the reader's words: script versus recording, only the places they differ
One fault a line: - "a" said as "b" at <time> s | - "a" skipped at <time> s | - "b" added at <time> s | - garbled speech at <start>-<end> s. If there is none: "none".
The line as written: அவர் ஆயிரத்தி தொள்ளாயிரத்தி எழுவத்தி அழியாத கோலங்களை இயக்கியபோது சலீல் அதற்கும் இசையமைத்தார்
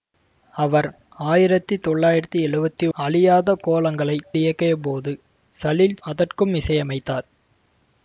none